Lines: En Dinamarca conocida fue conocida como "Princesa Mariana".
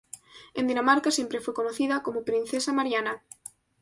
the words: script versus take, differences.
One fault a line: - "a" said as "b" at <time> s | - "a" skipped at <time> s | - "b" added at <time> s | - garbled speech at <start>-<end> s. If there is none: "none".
- "conocida" said as "siempre" at 1.1 s